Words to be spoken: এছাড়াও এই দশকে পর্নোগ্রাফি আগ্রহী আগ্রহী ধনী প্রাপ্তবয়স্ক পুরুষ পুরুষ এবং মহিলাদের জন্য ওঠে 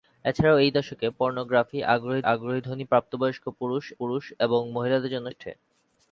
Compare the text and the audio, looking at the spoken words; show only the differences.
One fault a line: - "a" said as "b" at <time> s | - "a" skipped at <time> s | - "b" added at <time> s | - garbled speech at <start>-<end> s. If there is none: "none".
none